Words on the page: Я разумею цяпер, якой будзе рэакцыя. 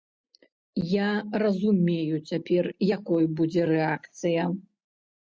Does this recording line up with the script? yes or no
yes